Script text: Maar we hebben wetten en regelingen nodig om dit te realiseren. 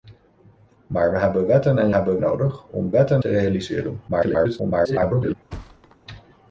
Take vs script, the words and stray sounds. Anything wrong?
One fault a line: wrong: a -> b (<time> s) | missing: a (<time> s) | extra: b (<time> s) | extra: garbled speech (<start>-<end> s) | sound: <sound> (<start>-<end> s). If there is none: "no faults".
wrong: regelingen -> hebben (1.9 s)
wrong: dit -> wetten (2.9 s)
extra: garbled speech (4.1-5.3 s)
sound: thud (5.5-6.0 s)